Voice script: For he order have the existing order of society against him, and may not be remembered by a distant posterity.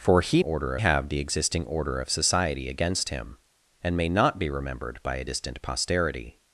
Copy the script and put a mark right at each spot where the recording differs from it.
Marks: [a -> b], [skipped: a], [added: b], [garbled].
For he order have the existing order of society against him, and may not be remembered by a distant posterity.